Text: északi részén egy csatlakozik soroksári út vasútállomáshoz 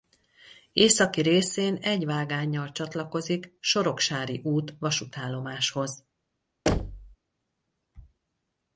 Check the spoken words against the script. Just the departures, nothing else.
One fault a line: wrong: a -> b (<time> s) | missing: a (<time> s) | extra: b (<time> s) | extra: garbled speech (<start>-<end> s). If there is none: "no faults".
extra: vágánnyal (2.0 s)